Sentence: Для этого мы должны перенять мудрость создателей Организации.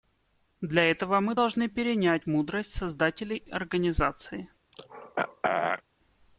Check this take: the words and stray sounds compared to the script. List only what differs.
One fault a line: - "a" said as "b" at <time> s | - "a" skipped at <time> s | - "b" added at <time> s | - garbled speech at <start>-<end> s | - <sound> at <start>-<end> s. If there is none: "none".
- throat clearing at 4.7-5.8 s